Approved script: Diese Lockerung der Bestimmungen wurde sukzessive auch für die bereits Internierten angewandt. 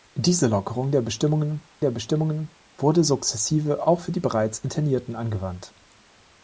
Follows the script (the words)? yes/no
no